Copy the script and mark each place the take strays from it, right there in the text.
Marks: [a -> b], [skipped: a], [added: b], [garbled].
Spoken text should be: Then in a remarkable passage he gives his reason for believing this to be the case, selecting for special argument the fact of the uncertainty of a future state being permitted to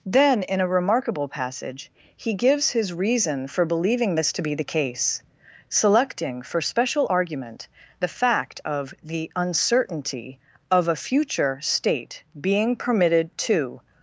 Then in a remarkable passage he gives his reason for believing this to be the case, selecting for special argument the fact of the uncertainty of a future state being permitted to